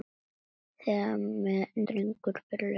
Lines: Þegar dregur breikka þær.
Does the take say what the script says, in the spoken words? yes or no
yes